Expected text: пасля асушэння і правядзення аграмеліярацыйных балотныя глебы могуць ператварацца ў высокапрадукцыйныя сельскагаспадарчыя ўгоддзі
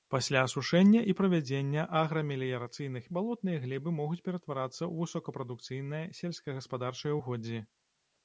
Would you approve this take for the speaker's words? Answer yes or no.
yes